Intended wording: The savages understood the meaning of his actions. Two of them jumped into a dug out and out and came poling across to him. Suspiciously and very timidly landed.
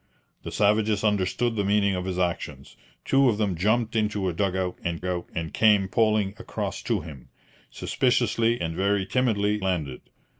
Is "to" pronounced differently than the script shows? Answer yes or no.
no